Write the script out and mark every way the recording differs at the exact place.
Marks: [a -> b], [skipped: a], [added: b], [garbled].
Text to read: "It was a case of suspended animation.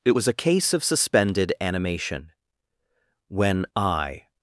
"It was a case of suspended animation. [added: When I]